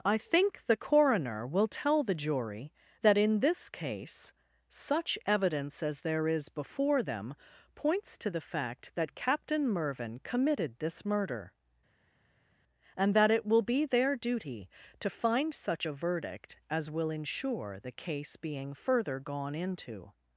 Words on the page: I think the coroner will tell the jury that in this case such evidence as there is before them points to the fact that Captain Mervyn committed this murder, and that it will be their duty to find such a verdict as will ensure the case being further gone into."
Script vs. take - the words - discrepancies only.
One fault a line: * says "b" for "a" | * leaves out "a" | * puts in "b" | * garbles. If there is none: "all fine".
all fine